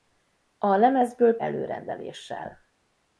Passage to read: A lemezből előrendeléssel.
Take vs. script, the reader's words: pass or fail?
pass